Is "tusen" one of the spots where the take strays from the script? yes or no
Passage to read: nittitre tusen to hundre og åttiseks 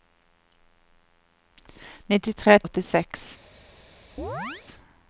yes